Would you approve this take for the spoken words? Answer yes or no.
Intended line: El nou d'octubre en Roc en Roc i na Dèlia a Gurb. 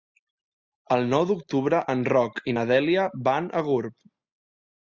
no